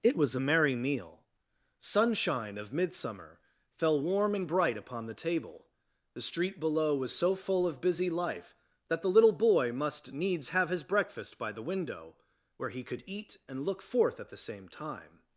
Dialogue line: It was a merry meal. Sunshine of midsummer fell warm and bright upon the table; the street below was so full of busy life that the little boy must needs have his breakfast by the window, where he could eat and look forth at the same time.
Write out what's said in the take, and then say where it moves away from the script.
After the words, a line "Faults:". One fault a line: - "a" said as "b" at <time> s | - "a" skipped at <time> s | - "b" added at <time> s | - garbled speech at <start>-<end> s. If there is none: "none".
It was a merry meal. Sunshine of midsummer fell warm and bright upon the table; the street below was so full of busy life that the little boy must needs have his breakfast by the window, where he could eat and look forth at the same time.
Faults:
none